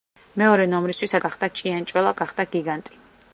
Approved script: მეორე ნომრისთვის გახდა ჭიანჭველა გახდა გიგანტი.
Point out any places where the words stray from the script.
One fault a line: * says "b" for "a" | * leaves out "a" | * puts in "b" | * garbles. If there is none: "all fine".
all fine